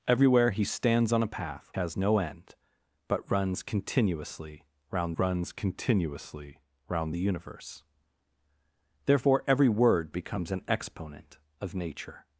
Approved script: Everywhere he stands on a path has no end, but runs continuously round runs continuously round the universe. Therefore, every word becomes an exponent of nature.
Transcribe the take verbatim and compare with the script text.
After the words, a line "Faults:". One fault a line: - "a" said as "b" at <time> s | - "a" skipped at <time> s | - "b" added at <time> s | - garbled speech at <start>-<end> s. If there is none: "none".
Everywhere he stands on a path has no end, but runs continuously round runs continuously round the universe. Therefore, every word becomes an exponent of nature.
Faults:
none